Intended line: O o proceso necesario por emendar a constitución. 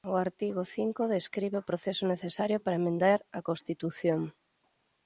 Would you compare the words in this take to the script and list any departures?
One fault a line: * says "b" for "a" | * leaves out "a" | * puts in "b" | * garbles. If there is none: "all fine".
* puts in "artigo cinco describe"
* says "para" for "por"